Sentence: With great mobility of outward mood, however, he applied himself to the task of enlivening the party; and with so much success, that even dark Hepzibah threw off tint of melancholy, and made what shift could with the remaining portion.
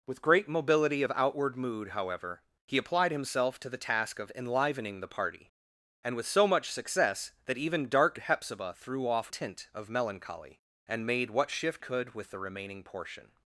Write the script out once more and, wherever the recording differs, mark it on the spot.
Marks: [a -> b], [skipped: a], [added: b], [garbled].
With great mobility of outward mood, however, he applied himself to the task of enlivening the party; and with so much success, that even dark Hepzibah threw off tint of melancholy, and made what shift could with the remaining portion.